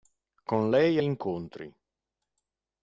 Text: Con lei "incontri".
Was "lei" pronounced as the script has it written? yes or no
yes